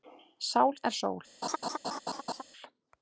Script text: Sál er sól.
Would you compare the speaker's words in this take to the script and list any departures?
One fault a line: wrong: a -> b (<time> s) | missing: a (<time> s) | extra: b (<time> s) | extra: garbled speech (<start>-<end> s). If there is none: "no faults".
no faults